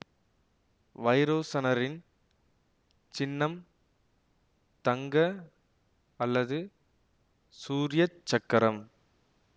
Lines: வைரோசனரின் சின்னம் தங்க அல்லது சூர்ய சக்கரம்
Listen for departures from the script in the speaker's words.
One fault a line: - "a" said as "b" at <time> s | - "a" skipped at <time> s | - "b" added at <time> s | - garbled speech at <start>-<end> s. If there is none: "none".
none